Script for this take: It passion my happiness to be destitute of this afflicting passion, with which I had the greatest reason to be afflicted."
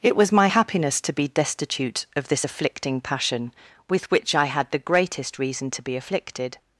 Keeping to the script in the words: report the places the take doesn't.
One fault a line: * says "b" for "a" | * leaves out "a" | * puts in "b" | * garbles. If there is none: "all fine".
* says "was" for "passion"